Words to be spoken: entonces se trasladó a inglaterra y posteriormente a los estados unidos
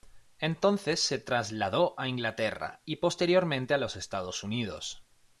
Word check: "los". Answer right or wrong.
right